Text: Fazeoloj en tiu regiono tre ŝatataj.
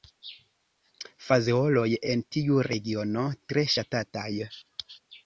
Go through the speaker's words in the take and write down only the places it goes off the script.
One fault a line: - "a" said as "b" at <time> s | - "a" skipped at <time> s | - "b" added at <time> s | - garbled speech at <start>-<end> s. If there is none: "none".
none